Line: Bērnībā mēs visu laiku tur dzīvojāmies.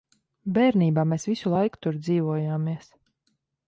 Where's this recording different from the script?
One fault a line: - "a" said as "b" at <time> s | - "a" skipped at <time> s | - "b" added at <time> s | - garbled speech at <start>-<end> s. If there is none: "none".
none